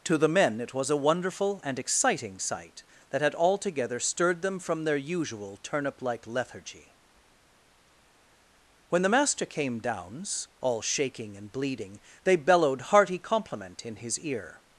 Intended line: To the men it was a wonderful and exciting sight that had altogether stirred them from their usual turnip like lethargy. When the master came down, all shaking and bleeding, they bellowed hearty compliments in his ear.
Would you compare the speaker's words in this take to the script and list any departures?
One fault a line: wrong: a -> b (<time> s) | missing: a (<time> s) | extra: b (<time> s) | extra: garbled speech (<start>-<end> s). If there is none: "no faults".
wrong: down -> downs (9.8 s)
wrong: compliments -> compliment (13.2 s)